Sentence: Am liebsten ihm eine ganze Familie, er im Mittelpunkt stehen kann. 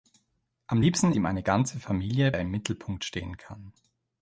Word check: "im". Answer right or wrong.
right